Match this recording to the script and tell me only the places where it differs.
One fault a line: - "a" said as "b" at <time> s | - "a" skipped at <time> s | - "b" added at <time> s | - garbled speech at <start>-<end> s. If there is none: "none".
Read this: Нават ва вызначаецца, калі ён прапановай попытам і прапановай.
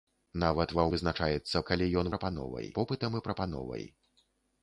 none